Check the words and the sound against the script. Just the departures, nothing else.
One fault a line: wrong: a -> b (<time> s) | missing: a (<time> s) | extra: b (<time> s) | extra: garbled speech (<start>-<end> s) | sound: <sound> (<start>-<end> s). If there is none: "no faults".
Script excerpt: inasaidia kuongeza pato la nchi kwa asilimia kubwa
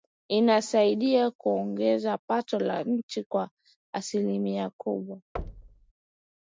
sound: thud (5.4-5.9 s)